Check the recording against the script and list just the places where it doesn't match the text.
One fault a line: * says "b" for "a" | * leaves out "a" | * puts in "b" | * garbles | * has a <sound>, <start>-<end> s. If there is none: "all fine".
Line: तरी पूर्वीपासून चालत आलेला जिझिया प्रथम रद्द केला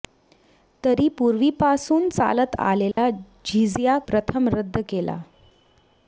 * has a dropout, 2.9-3.0 s